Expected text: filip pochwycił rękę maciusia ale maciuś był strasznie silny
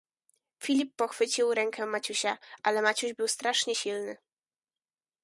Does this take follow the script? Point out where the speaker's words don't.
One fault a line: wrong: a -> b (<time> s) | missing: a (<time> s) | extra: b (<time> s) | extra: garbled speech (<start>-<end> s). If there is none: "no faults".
no faults